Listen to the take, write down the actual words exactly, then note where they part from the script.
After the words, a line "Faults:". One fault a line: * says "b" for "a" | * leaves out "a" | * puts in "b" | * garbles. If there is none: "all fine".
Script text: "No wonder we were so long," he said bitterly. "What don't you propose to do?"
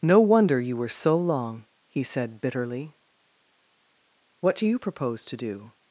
"No wonder you were so long," he said bitterly. "What do you propose to do?"
Faults:
* says "you" for "we"
* says "do" for "don't"